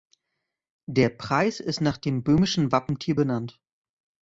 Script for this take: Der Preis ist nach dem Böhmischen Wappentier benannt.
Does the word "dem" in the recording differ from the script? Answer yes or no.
no